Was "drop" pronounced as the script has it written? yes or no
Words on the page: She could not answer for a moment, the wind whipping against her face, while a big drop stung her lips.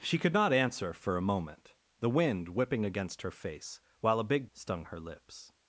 no